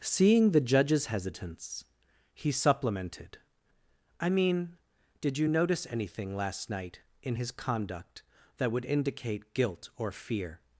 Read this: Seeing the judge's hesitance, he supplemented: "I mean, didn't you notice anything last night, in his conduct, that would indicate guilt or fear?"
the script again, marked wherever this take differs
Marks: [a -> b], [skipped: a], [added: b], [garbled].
Seeing the judge's hesitance, he supplemented: "I mean, [didn't -> did] you notice anything last night, in his conduct, that would indicate guilt or fear?"